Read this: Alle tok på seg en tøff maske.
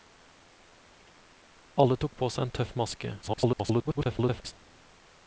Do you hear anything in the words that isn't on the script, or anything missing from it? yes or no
yes